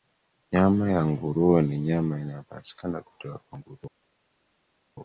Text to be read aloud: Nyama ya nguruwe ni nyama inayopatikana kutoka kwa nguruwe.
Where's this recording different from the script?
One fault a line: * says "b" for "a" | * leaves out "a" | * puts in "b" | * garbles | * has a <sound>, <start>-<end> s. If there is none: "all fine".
all fine